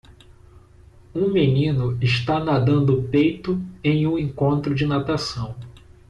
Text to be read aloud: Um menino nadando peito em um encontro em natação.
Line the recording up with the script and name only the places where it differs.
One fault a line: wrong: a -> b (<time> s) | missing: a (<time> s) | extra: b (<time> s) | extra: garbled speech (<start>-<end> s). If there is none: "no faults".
extra: está (2.0 s)
wrong: em -> de (4.7 s)